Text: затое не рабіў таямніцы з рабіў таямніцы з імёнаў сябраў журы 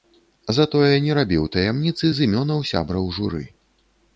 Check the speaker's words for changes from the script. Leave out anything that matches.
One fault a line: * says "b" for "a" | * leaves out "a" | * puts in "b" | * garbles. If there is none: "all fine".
* leaves out "рабіў таямніцы з"